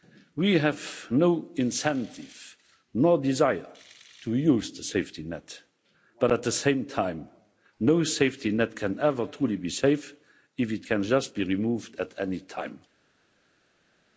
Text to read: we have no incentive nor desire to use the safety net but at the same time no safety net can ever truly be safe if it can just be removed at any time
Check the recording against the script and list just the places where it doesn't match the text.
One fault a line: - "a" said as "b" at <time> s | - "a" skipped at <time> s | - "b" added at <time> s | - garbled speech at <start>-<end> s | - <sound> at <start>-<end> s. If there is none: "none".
none